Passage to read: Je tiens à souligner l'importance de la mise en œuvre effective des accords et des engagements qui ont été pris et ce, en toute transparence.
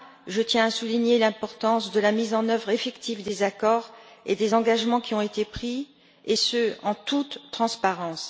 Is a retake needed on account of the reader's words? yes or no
no